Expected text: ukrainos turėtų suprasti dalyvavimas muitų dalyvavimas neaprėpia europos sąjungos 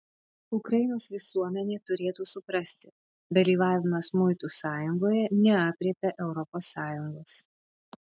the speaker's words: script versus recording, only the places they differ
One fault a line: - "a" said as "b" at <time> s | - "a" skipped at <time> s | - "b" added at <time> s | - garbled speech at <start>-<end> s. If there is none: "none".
- "visuomenė" added at 1.1 s
- "dalyvavimas" said as "sąjungoje" at 4.6 s